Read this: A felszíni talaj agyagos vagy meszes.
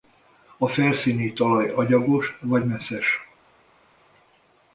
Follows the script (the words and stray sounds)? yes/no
yes